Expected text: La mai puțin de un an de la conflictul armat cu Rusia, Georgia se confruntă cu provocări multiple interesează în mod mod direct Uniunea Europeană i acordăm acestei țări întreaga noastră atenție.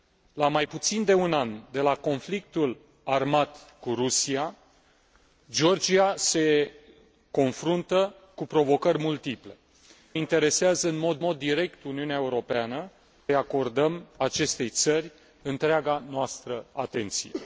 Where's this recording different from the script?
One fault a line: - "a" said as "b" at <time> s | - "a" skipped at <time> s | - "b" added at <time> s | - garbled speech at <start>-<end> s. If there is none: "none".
none